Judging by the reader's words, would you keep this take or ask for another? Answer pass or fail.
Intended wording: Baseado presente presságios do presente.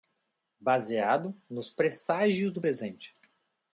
fail